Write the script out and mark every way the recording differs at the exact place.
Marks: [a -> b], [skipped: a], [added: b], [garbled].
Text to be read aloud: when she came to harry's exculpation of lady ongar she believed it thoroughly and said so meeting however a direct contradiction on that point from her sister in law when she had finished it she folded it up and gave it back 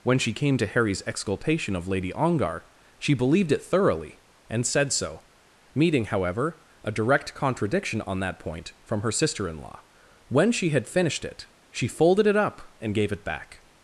when she came to harry's exculpation of lady ongar she believed it thoroughly and said so meeting however a direct contradiction on that point from her sister in law when she had finished it she folded it up and gave it back